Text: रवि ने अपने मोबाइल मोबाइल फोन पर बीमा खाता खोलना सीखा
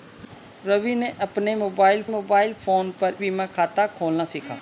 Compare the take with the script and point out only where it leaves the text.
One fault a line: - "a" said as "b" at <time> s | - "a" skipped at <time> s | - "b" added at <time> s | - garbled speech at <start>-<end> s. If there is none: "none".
none